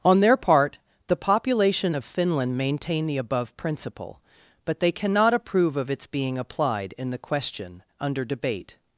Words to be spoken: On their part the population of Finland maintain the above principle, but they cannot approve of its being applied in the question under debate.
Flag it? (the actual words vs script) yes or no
no